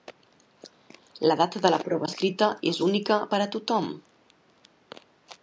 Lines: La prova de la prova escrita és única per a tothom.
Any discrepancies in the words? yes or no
yes